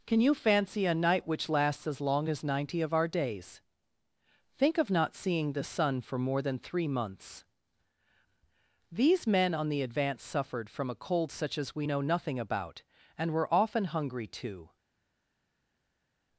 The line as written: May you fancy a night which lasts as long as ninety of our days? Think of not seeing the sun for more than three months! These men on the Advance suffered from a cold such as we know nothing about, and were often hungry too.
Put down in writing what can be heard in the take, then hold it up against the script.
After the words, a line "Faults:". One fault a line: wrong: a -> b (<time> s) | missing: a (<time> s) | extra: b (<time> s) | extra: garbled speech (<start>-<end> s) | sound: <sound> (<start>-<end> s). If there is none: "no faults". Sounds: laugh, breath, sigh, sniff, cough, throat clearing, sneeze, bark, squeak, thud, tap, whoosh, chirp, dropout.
Can you fancy a night which lasts as long as ninety of our days? Think of not seeing the sun for more than three months! These men on the Advance suffered from a cold such as we know nothing about, and were often hungry too.
Faults:
wrong: May -> Can (0.1 s)